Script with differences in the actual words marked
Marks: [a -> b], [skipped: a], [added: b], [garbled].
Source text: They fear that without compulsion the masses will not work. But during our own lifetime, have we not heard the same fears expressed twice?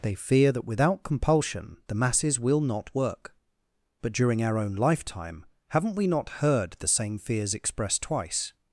They fear that without compulsion the masses will not work. But during our own lifetime, [have -> haven't] we not heard the same fears expressed twice?